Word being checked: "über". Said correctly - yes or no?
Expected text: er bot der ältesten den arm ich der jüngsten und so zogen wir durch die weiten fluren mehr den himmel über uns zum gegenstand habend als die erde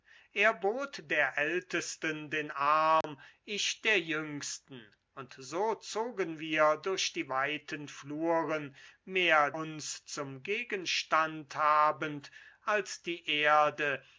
no